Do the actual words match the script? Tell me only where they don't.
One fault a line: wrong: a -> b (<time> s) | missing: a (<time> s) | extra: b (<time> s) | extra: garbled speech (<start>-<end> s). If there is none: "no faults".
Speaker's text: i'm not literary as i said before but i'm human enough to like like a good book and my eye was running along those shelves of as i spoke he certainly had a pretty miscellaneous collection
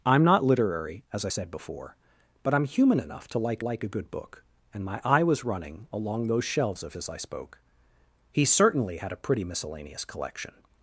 no faults